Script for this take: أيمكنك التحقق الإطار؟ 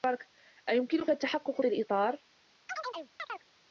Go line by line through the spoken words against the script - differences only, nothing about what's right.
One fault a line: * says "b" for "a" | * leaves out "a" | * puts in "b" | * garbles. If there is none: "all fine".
all fine